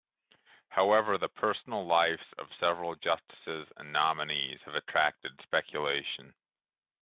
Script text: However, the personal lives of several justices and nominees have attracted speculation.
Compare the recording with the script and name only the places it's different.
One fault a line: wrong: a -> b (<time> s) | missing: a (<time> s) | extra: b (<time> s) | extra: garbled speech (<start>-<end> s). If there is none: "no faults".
no faults